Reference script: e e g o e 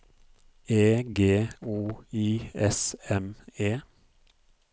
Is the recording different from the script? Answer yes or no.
yes